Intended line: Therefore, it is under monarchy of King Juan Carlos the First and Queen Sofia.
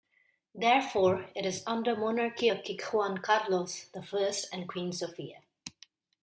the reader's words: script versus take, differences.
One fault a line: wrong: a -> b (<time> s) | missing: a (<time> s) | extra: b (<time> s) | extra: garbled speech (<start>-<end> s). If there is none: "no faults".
no faults